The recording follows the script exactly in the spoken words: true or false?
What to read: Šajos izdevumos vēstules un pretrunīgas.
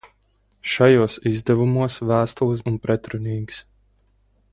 true